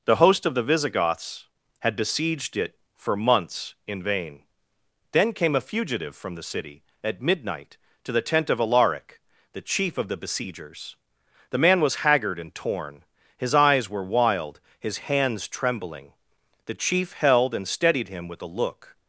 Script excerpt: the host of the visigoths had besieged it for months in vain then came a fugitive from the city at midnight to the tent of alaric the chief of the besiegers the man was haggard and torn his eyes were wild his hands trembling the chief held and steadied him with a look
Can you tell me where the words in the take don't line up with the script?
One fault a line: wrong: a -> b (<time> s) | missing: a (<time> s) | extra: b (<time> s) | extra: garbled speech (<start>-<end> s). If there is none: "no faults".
no faults